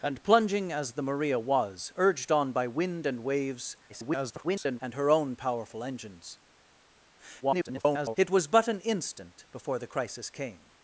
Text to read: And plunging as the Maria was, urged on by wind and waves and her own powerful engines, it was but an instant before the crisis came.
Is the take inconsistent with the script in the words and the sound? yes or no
yes